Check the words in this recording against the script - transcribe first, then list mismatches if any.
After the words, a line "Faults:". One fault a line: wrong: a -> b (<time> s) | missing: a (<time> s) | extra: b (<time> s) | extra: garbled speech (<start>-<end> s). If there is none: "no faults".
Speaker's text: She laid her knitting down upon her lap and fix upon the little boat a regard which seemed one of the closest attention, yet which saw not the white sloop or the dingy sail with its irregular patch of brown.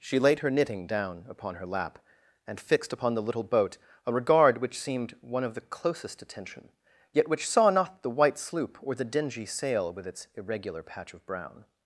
She laid her knitting down upon her lap and fixed upon the little boat a regard which seemed one of the closest attention, yet which saw not the white sloop or the dingy sail with its irregular patch of brown.
Faults:
wrong: fix -> fixed (2.6 s)